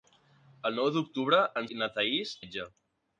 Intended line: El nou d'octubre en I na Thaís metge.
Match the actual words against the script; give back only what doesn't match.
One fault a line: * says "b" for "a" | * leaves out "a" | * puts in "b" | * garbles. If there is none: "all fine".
all fine